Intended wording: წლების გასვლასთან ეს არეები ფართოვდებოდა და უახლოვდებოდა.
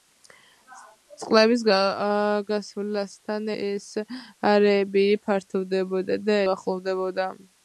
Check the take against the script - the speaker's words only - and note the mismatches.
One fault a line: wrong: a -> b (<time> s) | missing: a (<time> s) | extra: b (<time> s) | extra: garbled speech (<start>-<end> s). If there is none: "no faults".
no faults